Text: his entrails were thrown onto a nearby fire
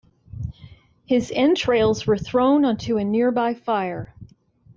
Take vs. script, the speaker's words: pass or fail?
pass